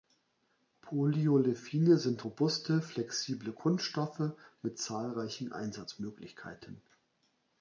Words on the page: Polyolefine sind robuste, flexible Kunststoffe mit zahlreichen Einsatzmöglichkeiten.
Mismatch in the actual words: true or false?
false